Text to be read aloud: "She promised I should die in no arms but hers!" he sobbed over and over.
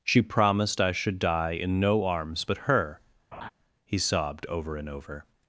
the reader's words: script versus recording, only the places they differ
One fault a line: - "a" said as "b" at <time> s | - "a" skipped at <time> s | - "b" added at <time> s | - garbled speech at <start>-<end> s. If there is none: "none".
- "hers" said as "her" at 2.6 s